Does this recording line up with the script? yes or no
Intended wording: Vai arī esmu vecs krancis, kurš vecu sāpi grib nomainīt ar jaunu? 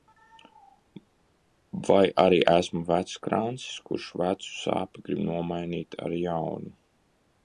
yes